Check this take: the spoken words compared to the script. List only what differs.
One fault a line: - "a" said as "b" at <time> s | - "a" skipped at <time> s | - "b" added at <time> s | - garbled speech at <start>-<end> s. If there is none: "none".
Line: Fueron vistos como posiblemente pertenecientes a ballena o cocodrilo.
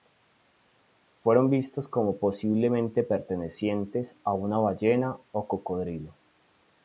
- "una" added at 4.3 s